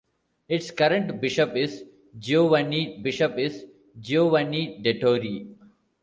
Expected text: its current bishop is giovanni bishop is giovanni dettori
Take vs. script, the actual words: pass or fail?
pass